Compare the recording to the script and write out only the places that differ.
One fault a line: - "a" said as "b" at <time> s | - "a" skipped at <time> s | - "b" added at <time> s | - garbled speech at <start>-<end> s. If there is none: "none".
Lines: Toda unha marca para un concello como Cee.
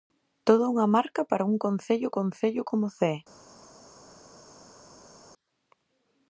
- "concello" added at 2.2 s